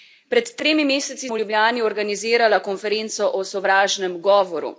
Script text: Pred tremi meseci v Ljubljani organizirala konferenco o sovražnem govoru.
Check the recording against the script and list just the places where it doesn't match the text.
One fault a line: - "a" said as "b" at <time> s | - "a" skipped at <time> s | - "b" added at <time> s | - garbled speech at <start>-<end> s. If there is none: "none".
none